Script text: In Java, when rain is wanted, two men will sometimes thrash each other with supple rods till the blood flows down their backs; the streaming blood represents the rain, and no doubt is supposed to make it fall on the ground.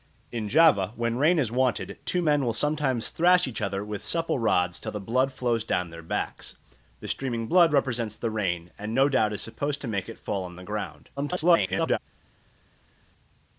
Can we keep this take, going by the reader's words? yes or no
no